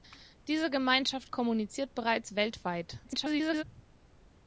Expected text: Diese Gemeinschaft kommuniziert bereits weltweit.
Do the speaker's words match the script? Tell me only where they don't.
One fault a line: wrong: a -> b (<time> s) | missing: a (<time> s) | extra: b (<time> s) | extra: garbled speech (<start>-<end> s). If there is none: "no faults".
extra: garbled speech (3.0-3.6 s)